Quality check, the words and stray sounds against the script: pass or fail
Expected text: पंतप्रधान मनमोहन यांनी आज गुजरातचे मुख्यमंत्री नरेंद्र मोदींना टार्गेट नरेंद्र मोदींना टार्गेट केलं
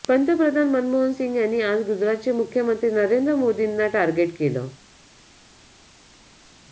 fail